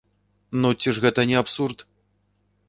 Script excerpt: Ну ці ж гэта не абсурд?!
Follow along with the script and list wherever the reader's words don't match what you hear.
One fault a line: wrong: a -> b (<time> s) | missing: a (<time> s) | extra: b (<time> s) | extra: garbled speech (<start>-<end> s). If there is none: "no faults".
no faults